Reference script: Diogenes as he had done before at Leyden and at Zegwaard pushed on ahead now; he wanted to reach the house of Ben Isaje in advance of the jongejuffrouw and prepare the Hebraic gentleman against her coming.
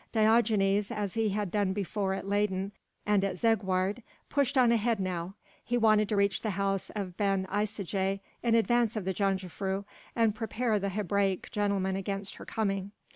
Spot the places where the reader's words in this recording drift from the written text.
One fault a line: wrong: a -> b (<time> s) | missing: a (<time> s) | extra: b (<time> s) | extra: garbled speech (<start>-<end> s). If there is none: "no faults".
no faults